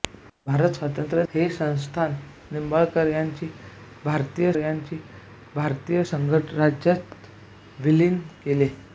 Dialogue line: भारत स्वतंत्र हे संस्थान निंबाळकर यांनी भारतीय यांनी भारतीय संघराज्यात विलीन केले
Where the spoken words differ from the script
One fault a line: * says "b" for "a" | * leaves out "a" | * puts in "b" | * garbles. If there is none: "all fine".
all fine